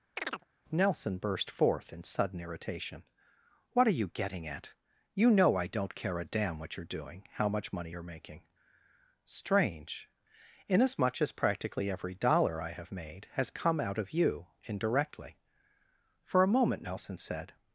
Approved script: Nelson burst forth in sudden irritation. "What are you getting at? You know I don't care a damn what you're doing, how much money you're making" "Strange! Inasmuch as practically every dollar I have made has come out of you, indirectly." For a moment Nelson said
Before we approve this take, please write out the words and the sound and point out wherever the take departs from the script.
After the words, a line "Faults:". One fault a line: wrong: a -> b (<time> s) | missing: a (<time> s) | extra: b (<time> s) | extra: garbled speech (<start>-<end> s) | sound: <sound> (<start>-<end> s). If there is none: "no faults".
Nelson burst forth in sudden irritation. "What are you getting at? You know I don't care a damn what you're doing, how much money you're making" "Strange! Inasmuch as practically every dollar I have made has come out of you, indirectly." For a moment Nelson said
Faults:
sound: chirp (0.2-0.4 s)